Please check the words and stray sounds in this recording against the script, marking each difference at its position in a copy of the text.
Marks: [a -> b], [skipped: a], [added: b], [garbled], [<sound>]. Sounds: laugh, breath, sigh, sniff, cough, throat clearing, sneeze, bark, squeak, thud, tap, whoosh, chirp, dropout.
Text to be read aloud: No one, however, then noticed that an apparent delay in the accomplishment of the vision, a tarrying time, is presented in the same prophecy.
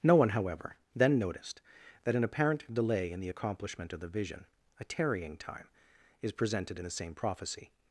No one, however, then noticed that an apparent delay in the accomplishment of the vision, a tarrying time, is presented in the same prophecy.